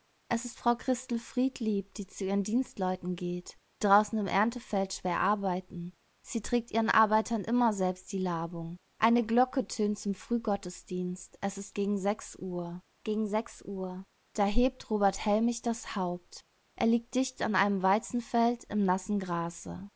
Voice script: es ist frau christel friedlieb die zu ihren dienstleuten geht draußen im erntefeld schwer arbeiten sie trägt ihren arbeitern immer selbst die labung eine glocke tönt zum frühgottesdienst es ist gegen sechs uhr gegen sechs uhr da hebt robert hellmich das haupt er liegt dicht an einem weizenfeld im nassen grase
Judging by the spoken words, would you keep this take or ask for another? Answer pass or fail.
pass